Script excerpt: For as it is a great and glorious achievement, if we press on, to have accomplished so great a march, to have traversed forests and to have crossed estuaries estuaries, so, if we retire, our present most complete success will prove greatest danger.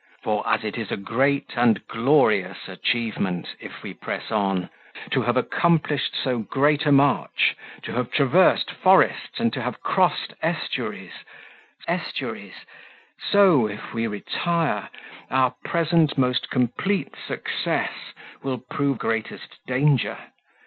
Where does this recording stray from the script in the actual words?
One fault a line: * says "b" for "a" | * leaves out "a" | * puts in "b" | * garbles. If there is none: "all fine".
all fine